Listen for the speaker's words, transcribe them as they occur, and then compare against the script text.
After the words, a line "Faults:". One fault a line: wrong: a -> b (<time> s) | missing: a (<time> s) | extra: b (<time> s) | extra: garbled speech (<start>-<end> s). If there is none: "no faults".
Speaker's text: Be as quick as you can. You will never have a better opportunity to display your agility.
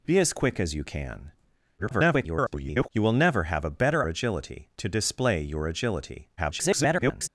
Be as quick as you can. [garbled] You will never have a better agility to display your agility. [garbled]
Faults:
extra: garbled speech (1.8-2.9 s)
wrong: opportunity -> agility (4.1 s)
extra: garbled speech (6.4-7.3 s)